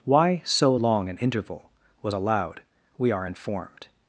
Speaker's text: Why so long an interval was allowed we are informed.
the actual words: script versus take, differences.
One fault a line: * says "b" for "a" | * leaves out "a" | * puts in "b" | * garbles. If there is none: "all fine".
all fine